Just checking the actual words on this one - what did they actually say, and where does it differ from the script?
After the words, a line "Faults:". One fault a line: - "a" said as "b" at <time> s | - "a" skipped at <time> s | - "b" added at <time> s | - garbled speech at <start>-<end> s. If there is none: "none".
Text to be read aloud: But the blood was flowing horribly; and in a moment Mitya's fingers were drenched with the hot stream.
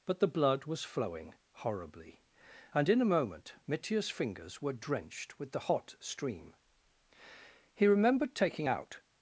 But the blood was flowing horribly; and in a moment Mitya's fingers were drenched with the hot stream. He remembered taking out
Faults:
- "He remembered taking out" added at 7.7 s